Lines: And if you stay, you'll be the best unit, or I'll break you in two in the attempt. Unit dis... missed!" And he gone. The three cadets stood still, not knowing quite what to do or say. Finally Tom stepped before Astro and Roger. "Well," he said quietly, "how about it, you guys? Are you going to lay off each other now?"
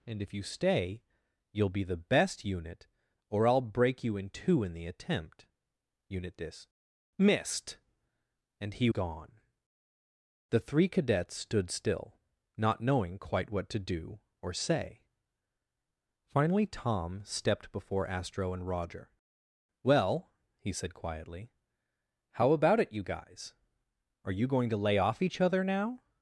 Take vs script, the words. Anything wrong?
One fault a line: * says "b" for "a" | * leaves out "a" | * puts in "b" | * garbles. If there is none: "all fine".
all fine